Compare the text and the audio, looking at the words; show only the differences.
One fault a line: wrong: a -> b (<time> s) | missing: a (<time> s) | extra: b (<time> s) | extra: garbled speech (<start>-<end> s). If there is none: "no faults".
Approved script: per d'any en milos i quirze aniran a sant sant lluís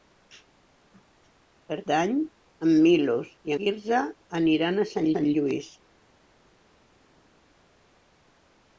no faults